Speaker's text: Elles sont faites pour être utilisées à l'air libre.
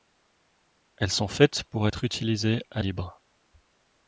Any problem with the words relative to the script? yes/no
yes